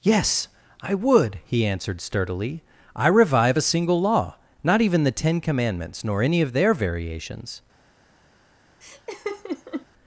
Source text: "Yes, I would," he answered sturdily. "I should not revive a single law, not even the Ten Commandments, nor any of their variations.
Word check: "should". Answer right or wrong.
wrong